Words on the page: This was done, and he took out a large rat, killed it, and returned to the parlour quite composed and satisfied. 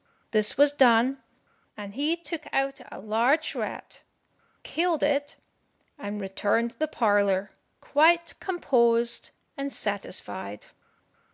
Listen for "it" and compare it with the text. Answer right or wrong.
right